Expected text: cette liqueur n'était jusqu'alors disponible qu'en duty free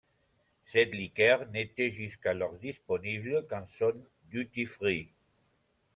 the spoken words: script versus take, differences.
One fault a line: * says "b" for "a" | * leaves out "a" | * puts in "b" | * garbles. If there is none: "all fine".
* puts in "zone"